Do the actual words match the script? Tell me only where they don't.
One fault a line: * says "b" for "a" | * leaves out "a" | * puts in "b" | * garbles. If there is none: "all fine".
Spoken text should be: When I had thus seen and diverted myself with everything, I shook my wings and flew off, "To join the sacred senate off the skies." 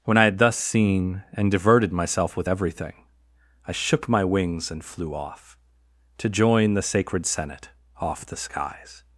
all fine